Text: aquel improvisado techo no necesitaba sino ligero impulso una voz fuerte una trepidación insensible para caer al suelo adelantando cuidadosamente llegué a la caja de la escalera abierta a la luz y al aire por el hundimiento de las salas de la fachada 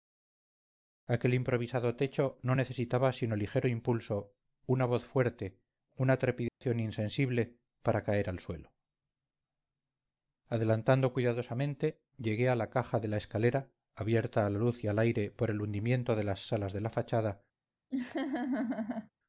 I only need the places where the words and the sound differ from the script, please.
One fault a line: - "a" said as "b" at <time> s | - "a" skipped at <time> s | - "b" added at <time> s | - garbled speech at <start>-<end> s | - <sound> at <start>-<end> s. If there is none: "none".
- dropout at 6.5-6.6 s
- laugh at 17.9-19.1 s